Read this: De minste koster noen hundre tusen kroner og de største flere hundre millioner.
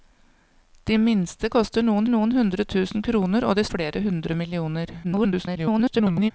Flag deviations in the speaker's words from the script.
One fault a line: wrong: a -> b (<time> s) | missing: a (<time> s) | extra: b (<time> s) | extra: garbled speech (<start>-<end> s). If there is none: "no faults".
extra: noen (2.1 s)
missing: største (3.7 s)
extra: garbled speech (5.0-6.3 s)